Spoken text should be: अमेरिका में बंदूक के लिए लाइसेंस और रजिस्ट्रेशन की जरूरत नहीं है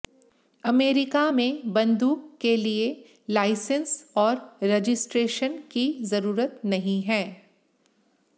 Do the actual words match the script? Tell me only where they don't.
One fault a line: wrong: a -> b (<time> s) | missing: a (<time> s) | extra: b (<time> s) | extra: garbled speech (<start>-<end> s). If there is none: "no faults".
no faults